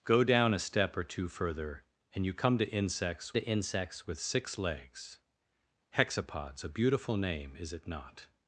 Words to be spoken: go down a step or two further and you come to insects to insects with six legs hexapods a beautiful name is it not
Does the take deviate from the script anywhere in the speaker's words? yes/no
no